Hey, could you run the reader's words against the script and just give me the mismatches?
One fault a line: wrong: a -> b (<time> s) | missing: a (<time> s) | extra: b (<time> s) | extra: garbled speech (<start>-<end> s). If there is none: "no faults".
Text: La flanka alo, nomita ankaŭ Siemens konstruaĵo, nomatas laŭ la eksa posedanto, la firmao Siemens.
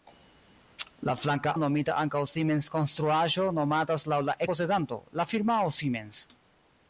missing: alo (1.5 s)
missing: eksa (4.4 s)